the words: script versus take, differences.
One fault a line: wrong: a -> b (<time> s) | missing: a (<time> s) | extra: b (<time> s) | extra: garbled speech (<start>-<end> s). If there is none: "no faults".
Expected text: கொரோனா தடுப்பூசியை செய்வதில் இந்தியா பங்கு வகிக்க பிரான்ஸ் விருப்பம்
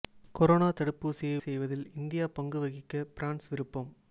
no faults